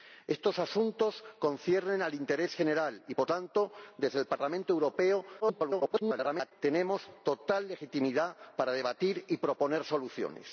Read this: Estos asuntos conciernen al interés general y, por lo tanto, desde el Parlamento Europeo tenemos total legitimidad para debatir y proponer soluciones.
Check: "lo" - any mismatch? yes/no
yes